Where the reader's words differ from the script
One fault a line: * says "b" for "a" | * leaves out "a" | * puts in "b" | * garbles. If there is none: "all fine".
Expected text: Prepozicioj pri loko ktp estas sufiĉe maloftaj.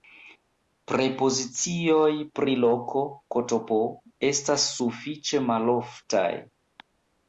all fine